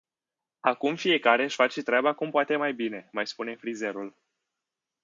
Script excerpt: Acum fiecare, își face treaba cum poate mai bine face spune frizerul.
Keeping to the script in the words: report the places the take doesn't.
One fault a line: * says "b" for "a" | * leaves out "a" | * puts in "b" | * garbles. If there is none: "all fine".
* says "mai" for "face"